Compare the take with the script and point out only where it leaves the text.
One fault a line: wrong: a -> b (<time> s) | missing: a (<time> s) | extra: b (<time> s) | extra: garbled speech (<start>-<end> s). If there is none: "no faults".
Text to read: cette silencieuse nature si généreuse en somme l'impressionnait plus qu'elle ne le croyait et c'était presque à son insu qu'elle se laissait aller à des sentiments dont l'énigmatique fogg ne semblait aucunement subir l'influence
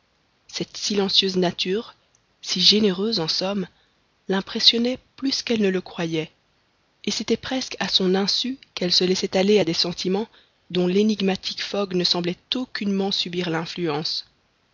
no faults